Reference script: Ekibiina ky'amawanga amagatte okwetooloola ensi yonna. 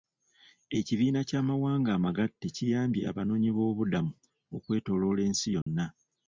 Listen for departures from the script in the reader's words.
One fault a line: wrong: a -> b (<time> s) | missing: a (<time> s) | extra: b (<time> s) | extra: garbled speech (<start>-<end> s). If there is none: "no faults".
extra: kiyambye abanoonyiboobubudamu (2.5 s)